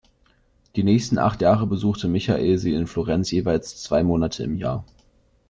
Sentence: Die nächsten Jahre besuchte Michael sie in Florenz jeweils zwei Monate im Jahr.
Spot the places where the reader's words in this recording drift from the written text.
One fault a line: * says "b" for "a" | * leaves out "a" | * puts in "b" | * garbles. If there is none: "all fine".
* puts in "acht"